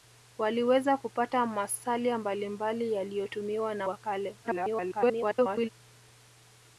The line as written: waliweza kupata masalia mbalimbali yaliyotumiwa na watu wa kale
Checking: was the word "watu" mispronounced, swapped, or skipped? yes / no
yes